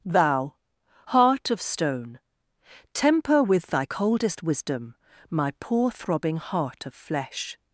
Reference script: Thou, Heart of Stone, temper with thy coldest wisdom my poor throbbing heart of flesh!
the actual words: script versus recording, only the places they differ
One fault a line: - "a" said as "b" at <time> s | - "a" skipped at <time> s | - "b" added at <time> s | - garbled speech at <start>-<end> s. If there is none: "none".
none